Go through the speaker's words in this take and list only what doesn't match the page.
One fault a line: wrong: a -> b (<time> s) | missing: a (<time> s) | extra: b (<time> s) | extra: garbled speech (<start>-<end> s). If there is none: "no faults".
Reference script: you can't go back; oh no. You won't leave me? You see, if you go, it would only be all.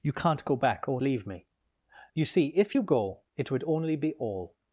missing: no You won't (1.0 s)